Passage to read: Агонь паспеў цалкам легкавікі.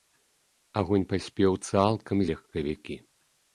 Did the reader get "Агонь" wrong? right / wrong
right